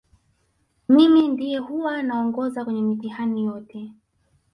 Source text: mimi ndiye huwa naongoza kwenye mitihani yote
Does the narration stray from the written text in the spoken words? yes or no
no